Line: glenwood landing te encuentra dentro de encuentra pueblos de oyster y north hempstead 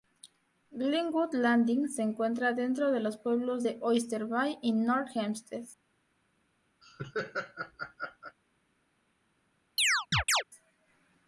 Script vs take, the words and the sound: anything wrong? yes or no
yes